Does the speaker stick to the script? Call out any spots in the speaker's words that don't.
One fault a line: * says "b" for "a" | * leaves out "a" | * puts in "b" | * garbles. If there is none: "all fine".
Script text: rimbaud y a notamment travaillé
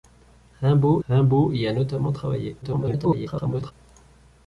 * puts in "rimbaud"
* garbles